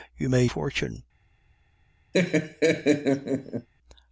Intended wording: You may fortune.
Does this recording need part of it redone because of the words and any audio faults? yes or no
yes